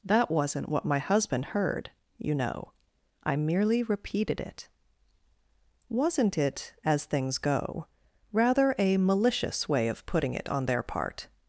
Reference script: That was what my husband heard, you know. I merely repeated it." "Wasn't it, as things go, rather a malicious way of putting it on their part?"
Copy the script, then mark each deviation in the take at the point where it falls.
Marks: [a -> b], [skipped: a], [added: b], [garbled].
That [was -> wasn't] what my husband heard, you know. I merely repeated it." "Wasn't it, as things go, rather a malicious way of putting it on their part?"